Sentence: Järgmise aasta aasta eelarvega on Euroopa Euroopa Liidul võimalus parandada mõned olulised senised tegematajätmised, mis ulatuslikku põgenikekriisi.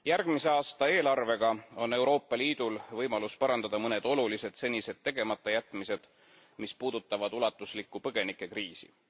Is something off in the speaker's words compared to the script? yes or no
yes